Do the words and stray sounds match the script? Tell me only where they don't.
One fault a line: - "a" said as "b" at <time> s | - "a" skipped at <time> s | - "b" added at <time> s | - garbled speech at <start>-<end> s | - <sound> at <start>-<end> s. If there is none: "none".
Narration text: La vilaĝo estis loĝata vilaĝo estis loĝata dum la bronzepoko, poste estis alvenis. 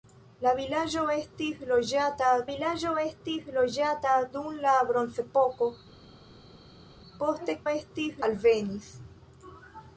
none